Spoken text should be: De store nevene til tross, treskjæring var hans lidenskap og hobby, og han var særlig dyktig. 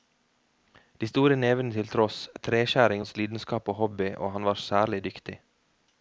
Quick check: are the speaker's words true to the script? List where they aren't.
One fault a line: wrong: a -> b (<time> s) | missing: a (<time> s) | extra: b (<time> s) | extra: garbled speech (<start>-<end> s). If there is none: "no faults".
missing: var (3.0 s)